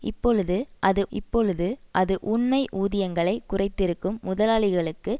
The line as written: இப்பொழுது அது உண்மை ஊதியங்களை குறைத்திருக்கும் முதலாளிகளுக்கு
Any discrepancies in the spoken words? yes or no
yes